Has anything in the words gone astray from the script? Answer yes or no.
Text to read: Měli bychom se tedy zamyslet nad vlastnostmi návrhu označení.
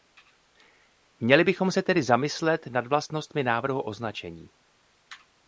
no